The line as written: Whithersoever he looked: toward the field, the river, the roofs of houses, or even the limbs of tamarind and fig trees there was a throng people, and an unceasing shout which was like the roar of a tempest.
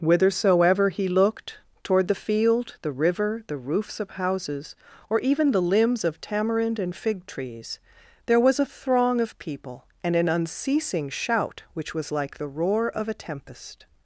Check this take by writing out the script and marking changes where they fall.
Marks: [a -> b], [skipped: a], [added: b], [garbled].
Whithersoever he looked: toward the field, the river, the roofs of houses, or even the limbs of tamarind and fig trees there was a throng [added: of] people, and an unceasing shout which was like the roar of a tempest.